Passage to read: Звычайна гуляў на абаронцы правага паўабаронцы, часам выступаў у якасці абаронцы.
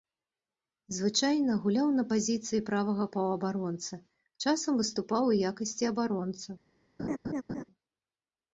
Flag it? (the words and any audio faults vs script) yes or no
yes